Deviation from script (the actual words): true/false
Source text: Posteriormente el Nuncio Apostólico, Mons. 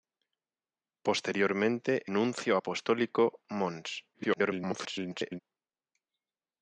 true